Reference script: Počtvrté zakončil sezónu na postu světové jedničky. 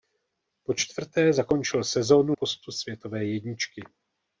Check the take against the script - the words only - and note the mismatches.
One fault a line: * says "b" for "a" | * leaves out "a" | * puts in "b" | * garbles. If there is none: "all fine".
* leaves out "na"